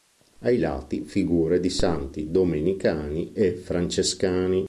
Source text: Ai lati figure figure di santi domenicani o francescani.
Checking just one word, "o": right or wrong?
wrong